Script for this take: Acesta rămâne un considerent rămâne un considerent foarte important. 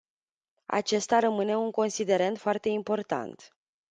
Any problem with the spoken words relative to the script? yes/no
yes